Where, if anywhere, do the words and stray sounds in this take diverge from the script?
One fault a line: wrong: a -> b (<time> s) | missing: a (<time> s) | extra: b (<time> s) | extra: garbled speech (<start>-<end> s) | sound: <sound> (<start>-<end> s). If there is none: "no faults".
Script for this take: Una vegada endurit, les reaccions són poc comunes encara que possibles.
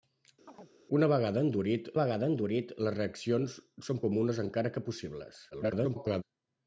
sound: chirp (0.5-0.7 s)
extra: vegada endurit (2.0 s)
missing: poc (4.1 s)
extra: garbled speech (5.5-6.2 s)